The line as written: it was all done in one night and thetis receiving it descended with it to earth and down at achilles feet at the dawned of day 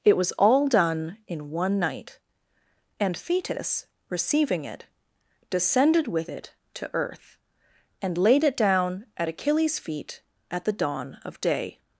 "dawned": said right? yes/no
no